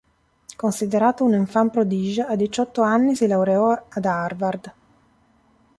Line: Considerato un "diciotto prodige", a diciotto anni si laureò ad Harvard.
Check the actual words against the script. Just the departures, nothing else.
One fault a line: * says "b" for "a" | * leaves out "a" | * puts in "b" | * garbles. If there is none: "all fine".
* says "enfant" for "diciotto"